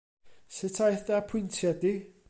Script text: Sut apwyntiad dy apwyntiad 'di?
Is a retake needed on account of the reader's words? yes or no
yes